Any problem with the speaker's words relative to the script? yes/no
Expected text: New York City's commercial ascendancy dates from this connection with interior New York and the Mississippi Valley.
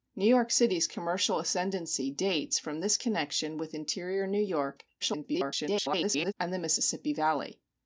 yes